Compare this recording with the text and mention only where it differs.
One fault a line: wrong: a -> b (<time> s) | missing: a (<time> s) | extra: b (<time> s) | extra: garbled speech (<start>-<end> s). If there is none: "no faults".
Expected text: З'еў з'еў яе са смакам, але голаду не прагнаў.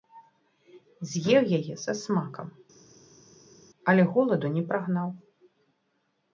missing: з'еў (1.4 s)